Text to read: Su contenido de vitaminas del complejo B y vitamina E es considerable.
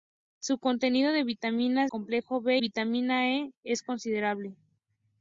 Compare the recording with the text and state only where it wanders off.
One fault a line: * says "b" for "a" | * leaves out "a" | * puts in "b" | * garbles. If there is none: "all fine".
* leaves out "del"
* leaves out "y"